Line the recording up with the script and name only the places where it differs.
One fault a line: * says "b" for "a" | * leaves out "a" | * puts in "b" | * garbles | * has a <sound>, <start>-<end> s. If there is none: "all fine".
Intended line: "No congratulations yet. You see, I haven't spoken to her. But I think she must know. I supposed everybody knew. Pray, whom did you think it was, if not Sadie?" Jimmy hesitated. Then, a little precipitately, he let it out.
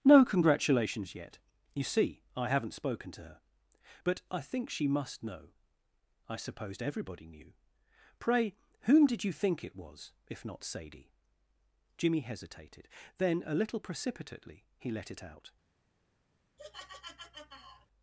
* has a laugh, 16.6-17.9 s